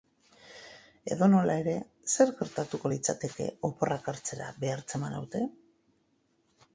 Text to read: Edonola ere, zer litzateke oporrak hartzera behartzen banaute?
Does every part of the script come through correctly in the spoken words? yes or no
no